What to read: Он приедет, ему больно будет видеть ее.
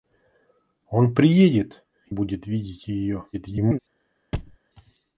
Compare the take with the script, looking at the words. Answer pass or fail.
fail